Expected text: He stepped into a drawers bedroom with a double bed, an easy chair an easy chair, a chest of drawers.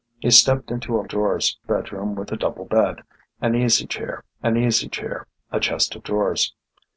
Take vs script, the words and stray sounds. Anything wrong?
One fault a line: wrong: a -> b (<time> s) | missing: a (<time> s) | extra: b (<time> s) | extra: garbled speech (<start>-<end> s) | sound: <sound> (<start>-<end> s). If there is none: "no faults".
no faults